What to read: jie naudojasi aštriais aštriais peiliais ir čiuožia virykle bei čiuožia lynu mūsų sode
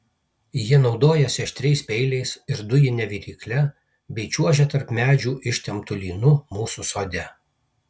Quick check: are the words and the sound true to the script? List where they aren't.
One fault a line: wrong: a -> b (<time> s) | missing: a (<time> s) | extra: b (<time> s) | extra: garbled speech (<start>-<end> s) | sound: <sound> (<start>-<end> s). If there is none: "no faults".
missing: aštriais (1.8 s)
wrong: čiuožia -> dujine (2.7 s)
extra: tarp medžių ištemptu (4.7 s)